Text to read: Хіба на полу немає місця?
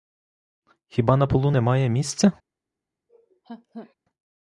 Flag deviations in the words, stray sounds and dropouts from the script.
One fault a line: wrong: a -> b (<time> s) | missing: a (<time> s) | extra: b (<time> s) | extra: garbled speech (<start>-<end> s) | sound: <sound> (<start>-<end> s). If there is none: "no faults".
sound: laugh (3.1-3.9 s)